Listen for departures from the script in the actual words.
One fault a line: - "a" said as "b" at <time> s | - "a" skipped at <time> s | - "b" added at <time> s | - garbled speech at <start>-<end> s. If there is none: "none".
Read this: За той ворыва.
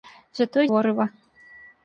none